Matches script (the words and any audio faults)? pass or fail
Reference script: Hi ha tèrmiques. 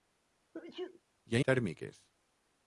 fail